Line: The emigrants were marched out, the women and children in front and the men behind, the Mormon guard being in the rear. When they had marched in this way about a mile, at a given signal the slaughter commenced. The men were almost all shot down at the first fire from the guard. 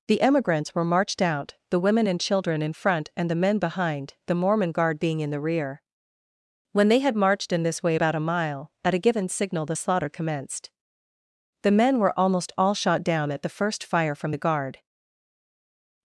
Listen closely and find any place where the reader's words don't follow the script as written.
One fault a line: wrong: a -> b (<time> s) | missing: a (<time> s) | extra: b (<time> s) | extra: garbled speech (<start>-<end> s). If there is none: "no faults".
no faults